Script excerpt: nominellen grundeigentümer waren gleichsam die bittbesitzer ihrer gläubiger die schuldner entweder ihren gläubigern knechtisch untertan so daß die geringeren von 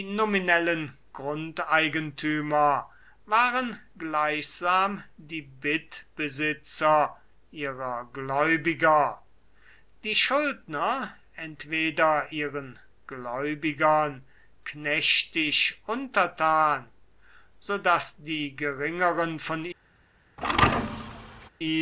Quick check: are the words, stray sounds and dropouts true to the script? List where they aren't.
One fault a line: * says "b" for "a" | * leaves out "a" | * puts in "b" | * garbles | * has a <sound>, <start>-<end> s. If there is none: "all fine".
* has a thud, 20.4-21.5 s